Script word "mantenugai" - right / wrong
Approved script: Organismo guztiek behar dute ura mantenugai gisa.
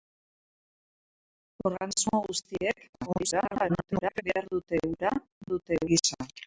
wrong